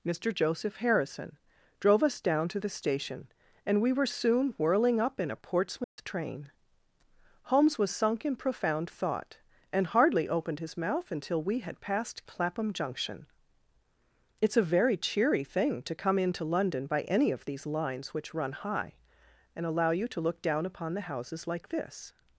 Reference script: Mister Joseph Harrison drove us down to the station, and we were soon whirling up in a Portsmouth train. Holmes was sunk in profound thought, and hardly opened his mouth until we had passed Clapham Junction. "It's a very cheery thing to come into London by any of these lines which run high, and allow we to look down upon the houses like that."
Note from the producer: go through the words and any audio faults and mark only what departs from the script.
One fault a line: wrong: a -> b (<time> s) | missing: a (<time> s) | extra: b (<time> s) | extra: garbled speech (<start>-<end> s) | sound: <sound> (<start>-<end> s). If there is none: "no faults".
sound: dropout (5.8-6.0 s)
wrong: we -> you (19.9 s)
wrong: that -> this (21.7 s)